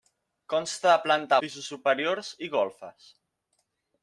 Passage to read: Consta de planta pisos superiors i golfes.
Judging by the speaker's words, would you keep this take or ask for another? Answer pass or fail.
pass